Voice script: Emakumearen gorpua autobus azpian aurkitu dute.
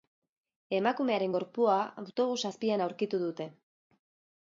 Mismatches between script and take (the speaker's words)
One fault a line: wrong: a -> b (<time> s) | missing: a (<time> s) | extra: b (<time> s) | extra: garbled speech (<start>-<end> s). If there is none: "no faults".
no faults